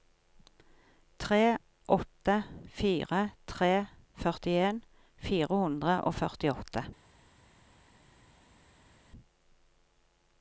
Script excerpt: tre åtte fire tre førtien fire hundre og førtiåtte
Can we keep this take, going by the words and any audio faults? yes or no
yes